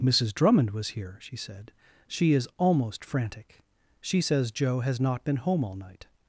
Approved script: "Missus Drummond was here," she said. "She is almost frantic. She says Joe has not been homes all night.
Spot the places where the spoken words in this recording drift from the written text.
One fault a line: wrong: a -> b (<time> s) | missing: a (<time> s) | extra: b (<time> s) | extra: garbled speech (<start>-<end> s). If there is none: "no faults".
wrong: homes -> home (5.4 s)